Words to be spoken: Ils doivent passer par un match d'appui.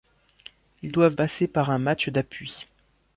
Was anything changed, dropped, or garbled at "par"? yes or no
no